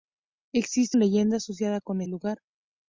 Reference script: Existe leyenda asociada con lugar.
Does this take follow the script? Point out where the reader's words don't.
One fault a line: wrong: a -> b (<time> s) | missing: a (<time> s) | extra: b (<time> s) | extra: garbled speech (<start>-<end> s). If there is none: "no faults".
no faults